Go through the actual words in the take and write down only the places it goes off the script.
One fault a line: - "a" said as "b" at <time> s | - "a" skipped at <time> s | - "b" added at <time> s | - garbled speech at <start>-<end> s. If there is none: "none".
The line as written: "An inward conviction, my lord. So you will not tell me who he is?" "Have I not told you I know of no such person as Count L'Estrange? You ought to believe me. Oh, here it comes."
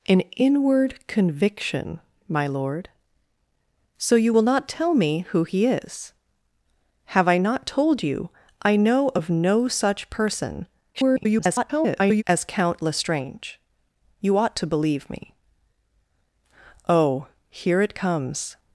- garbled speech at 10.9-12.2 s